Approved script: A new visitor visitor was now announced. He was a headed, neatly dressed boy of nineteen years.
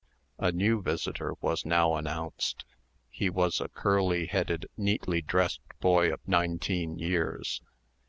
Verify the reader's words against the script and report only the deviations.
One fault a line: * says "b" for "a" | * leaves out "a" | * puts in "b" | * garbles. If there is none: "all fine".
* leaves out "visitor"
* puts in "curly"